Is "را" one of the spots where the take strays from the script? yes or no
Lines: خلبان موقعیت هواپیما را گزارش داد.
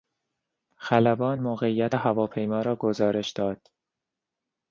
no